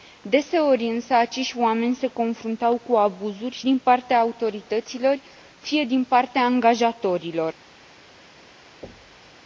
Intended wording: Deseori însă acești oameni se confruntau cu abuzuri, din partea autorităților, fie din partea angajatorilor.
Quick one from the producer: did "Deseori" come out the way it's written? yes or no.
yes